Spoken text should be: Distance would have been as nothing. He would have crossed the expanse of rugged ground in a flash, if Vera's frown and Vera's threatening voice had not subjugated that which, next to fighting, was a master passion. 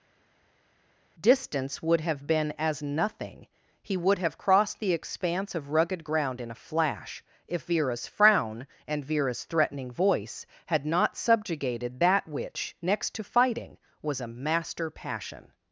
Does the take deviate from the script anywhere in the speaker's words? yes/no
no